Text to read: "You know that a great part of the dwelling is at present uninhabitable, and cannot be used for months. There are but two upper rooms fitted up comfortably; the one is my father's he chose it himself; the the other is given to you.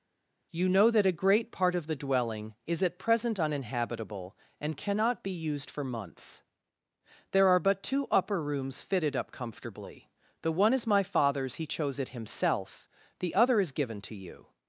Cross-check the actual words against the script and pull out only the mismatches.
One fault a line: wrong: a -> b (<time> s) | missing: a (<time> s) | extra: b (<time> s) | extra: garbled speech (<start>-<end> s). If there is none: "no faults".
missing: the (13.4 s)